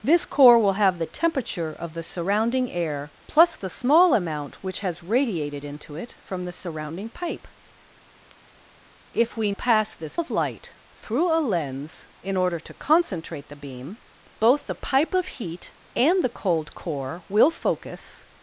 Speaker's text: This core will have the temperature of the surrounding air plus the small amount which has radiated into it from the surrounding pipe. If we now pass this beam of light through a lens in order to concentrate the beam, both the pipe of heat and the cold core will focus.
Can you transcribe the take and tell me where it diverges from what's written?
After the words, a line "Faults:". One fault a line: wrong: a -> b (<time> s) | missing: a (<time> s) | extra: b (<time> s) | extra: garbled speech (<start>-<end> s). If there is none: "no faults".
This core will have the temperature of the surrounding air plus the small amount which has radiated into it from the surrounding pipe. If we pass this of light through a lens in order to concentrate the beam, both the pipe of heat and the cold core will focus.
Faults:
missing: now (9.5 s)
missing: beam (10.2 s)